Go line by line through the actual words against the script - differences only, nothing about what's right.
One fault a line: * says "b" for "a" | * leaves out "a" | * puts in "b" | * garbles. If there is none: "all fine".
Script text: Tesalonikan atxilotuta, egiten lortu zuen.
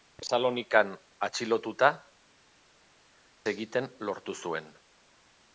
all fine